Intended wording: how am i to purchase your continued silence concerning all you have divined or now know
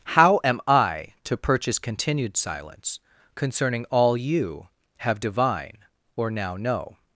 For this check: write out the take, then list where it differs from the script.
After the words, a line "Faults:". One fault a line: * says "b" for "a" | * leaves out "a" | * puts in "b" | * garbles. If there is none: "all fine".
how am i to purchase continued silence concerning all you have divine or now know
Faults:
* leaves out "your"
* says "divine" for "divined"